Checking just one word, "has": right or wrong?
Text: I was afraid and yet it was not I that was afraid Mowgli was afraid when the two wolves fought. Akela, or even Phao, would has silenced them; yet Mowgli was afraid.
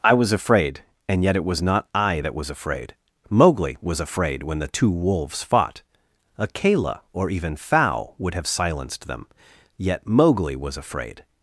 wrong